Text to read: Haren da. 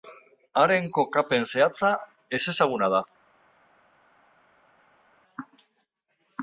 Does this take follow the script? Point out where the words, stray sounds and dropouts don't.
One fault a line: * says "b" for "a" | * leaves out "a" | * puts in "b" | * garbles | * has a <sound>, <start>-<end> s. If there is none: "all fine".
* puts in "kokapen zehatza ezezaguna"